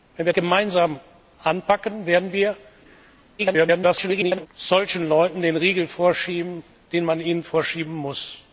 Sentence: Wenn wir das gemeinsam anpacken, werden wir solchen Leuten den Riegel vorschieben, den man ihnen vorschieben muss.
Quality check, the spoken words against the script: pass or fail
fail